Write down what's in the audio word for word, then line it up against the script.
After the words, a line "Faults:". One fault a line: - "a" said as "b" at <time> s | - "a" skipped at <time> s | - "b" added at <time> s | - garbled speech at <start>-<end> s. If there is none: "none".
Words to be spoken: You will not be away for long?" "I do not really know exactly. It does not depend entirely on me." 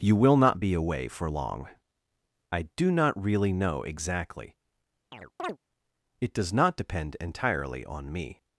You will not be away for long?" "I do not really know exactly. It does not depend entirely on me."
Faults:
none